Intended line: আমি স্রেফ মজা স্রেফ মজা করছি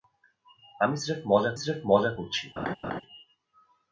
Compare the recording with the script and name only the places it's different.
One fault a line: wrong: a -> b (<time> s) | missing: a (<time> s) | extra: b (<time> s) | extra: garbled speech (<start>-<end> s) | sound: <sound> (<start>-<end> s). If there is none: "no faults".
sound: laugh (2.6-3.0 s)